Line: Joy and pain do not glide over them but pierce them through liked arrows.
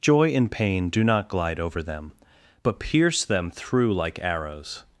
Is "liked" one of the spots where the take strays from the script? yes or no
yes